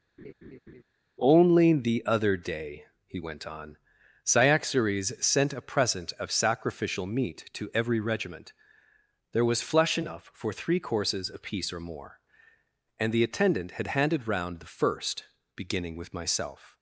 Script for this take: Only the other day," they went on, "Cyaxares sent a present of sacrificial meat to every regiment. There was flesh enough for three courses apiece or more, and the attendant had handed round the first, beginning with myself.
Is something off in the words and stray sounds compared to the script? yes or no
yes